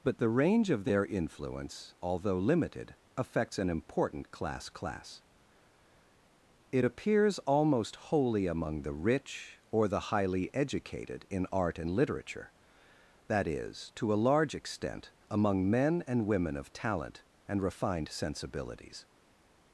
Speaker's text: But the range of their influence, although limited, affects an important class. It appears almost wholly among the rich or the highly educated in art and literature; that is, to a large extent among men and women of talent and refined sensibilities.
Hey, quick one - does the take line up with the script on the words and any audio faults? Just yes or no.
no